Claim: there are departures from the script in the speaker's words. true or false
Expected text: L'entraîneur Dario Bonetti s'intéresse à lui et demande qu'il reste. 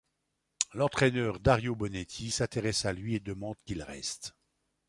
false